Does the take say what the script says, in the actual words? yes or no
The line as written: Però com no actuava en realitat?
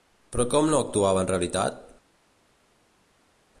yes